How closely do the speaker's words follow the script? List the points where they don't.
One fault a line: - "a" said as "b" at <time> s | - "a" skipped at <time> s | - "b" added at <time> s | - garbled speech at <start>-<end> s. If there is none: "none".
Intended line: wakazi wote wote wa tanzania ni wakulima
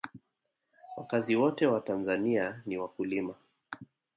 - "wote" skipped at 1.7 s